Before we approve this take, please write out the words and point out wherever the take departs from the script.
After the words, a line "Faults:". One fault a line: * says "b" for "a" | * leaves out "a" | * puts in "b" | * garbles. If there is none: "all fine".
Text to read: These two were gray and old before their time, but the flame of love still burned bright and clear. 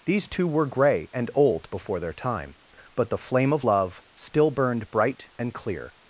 These two were gray and old before their time, but the flame of love still burned bright and clear.
Faults:
all fine